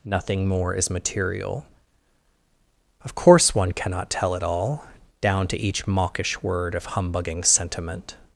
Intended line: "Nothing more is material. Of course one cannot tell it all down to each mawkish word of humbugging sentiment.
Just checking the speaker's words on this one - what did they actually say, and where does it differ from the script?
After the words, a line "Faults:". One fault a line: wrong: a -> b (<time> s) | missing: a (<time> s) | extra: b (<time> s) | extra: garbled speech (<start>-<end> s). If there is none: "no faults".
"Nothing more is material. Of course one cannot tell it all down to each mawkish word of humbugging sentiment.
Faults:
no faults